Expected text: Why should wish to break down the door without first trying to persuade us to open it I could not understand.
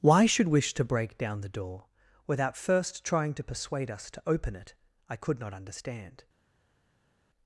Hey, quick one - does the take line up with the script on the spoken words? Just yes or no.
yes